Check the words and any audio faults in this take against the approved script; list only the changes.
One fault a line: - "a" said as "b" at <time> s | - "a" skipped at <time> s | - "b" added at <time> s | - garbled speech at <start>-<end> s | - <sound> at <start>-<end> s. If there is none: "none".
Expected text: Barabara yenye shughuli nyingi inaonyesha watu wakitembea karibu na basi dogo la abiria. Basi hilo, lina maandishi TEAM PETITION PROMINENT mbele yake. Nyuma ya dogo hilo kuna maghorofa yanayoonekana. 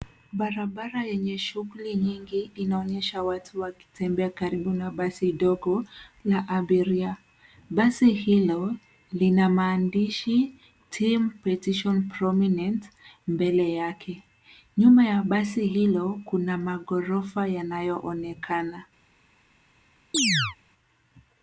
- "dogo" said as "basi" at 15.2 s
- chirp at 20.1-20.6 s